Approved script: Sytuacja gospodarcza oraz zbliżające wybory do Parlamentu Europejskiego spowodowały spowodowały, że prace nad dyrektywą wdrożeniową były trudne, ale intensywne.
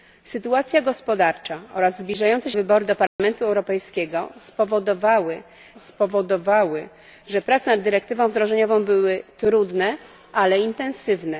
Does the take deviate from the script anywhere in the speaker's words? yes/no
no